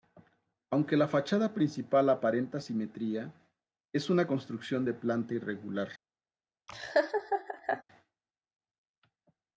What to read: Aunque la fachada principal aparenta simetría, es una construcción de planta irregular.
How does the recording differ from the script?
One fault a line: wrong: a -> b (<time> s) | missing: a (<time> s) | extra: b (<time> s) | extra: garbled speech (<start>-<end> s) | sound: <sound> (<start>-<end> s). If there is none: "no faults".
sound: laugh (6.7-7.8 s)